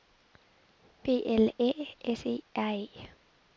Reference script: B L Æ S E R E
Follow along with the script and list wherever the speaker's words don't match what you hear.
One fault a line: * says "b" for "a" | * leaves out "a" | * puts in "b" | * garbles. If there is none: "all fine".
all fine